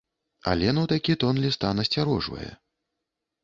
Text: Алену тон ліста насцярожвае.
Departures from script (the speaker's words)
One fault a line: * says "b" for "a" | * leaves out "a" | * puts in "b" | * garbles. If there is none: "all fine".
* puts in "такі"